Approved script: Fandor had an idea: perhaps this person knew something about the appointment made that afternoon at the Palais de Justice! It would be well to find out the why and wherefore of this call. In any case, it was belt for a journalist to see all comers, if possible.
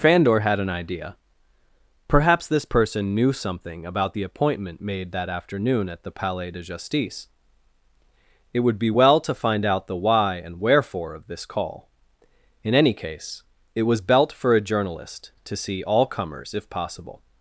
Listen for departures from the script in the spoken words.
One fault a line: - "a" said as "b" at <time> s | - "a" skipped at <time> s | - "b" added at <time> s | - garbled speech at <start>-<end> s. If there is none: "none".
none